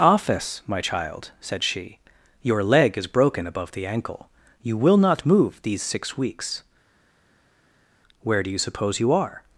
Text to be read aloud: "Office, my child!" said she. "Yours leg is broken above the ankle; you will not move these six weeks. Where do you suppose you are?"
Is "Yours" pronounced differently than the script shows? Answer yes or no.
yes